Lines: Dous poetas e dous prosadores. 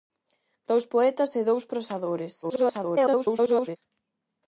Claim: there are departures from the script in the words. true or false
true